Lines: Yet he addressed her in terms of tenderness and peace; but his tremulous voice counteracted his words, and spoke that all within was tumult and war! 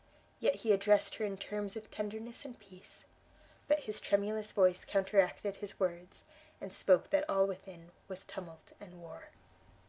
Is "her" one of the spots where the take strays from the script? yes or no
no